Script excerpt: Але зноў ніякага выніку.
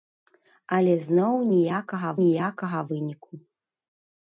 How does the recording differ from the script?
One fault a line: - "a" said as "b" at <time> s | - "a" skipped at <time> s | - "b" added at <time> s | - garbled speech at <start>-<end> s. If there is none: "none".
- "ніякага" added at 2.2 s